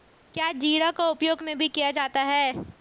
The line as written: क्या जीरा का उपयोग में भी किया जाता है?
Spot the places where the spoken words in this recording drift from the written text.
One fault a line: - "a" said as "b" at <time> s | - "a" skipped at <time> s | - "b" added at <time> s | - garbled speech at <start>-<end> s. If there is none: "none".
none